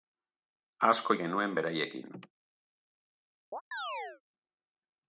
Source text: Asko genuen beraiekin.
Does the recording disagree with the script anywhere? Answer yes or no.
no